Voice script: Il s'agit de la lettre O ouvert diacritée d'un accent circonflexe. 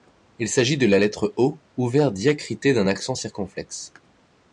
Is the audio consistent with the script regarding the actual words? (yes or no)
yes